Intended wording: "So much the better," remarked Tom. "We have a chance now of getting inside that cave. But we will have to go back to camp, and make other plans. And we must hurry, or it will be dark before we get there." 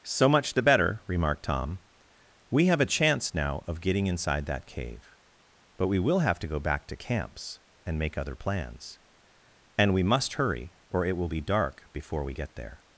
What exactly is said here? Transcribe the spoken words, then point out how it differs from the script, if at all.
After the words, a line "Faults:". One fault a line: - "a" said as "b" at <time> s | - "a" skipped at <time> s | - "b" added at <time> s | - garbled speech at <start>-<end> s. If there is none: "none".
"So much the better," remarked Tom. "We have a chance now of getting inside that cave. But we will have to go back to camps, and make other plans. And we must hurry, or it will be dark before we get there."
Faults:
- "camp" said as "camps" at 7.0 s